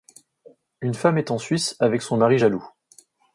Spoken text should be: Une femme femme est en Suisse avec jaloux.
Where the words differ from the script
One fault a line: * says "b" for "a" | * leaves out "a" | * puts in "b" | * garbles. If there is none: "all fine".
* leaves out "femme"
* puts in "son mari"